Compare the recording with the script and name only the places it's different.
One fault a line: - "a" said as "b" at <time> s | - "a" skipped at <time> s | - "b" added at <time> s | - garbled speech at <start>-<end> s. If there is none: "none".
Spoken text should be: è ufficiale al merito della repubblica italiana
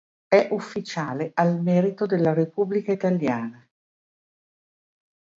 none